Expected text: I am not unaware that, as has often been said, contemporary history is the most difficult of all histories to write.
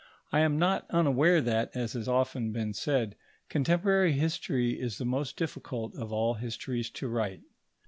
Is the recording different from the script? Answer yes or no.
no